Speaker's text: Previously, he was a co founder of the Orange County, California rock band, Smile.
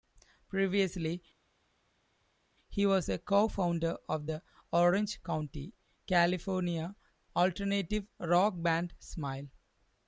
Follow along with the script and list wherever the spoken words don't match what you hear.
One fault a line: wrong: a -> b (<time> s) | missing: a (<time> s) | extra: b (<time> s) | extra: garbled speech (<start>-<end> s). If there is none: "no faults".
extra: alternative (7.3 s)